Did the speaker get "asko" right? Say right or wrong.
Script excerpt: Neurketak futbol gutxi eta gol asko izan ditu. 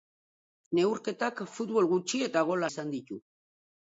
wrong